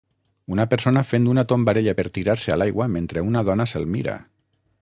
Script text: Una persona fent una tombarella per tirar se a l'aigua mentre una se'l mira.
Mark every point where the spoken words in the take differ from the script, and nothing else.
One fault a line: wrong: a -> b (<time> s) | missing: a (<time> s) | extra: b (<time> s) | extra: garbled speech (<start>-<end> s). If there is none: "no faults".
extra: dona (3.5 s)